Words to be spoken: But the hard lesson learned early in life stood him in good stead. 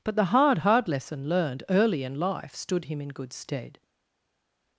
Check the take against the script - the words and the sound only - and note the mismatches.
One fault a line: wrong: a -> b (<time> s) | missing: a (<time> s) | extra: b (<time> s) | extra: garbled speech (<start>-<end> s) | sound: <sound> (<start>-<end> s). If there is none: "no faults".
extra: hard (0.6 s)